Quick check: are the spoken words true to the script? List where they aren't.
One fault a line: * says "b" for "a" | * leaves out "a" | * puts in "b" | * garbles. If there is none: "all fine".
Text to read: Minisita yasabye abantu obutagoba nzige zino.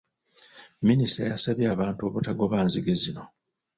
all fine